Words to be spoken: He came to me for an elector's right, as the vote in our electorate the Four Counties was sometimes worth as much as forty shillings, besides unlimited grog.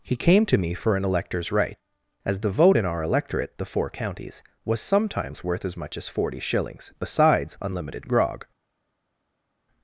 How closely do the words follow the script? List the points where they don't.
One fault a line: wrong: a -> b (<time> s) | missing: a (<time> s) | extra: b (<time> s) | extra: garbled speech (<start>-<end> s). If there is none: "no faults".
no faults